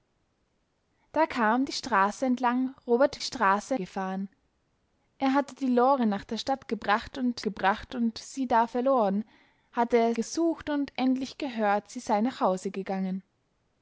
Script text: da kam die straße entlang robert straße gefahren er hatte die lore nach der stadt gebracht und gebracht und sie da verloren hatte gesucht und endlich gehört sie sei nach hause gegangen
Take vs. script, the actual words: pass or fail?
pass